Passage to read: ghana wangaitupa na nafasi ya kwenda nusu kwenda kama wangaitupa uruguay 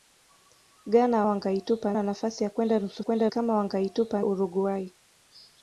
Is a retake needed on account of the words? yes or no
no